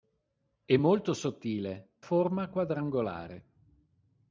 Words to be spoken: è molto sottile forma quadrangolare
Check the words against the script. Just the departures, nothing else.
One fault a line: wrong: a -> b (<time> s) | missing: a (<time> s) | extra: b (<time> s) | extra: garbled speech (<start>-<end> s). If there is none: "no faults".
no faults